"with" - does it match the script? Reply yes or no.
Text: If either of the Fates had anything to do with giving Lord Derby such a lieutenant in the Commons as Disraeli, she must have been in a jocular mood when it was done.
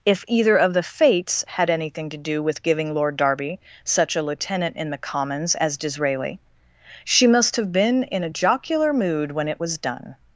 yes